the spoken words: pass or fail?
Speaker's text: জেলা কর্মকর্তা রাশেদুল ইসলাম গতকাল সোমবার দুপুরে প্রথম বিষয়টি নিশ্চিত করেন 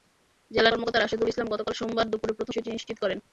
pass